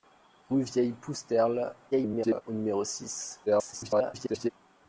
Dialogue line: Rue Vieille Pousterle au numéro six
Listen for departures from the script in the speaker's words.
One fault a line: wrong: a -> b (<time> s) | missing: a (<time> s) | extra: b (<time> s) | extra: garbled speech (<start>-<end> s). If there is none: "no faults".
extra: garbled speech (1.9-2.4 s)
extra: garbled speech (3.5-4.5 s)